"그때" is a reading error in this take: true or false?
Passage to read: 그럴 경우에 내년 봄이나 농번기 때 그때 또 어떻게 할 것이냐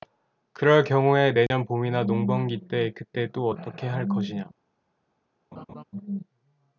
false